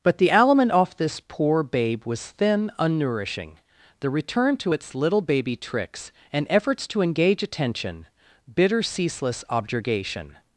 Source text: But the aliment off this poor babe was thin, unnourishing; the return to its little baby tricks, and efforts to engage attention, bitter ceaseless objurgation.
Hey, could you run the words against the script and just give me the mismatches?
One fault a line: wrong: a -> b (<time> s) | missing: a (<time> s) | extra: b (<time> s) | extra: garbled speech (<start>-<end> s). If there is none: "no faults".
no faults